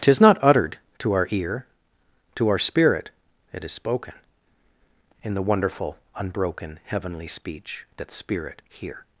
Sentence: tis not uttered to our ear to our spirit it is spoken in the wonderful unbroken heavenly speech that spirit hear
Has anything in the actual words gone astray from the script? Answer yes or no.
no